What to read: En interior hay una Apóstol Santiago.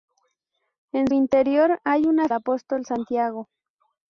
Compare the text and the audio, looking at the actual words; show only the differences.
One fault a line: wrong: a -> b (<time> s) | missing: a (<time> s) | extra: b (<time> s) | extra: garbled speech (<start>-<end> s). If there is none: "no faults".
no faults